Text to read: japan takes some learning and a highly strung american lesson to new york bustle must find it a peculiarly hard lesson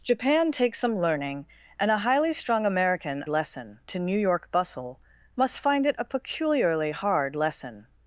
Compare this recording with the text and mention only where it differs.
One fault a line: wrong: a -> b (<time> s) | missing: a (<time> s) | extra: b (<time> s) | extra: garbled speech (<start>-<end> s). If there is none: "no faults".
no faults